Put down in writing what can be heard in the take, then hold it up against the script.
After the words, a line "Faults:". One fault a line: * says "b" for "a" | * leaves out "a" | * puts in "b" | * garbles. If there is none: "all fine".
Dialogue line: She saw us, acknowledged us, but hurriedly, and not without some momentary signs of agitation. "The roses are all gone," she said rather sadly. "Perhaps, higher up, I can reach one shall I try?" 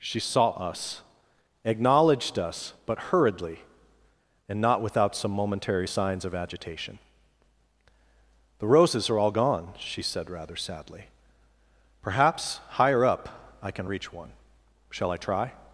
She saw us, acknowledged us, but hurriedly, and not without some momentary signs of agitation. "The roses are all gone," she said rather sadly. "Perhaps, higher up, I can reach one shall I try?"
Faults:
all fine